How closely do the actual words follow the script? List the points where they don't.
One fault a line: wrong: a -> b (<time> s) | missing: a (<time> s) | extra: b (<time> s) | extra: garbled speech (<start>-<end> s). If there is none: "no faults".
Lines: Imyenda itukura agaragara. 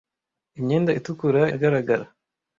no faults